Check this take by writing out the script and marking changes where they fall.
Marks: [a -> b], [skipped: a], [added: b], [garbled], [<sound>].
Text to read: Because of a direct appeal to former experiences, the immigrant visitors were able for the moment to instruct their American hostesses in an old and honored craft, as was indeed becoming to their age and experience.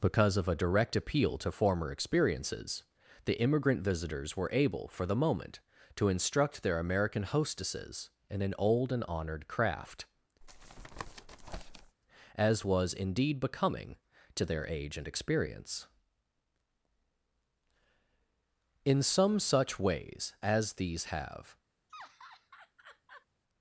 Because of a direct appeal to former experiences, the immigrant visitors were able for the moment to instruct their American hostesses in an old and honored craft, [tap] as was indeed becoming to their age and experience. [added: In some such ways as these have] [laugh]